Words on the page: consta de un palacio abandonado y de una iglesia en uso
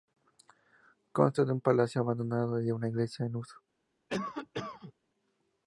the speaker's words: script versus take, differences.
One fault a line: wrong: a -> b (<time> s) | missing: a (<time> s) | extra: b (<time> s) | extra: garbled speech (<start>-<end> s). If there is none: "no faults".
no faults